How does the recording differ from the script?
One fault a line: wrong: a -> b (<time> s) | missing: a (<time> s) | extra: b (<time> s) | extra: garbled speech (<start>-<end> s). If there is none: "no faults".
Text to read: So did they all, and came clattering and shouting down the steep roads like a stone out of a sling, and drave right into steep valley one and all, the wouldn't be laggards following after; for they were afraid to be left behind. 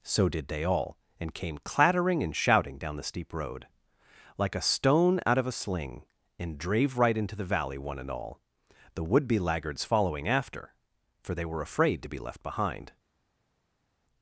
wrong: roads -> road (3.3 s)
wrong: steep -> the (7.3 s)
wrong: wouldn't -> would (9.0 s)